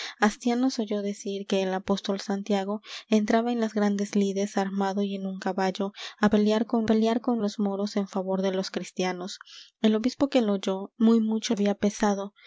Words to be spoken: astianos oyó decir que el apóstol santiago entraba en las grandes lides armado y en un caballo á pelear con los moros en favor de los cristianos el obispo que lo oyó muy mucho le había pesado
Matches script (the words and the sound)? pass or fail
fail